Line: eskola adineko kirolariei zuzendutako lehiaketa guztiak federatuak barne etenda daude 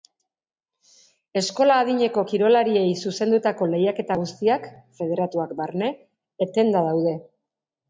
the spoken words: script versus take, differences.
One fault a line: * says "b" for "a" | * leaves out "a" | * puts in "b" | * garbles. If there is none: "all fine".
all fine